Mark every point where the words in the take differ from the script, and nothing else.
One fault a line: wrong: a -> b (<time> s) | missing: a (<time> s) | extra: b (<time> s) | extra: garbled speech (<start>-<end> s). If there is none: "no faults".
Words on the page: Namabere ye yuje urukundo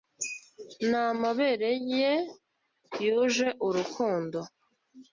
no faults